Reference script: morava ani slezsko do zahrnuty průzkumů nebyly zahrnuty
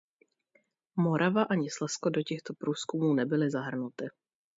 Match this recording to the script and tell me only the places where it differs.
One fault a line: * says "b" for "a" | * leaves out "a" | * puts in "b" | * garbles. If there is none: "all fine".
* says "těchto" for "zahrnuty"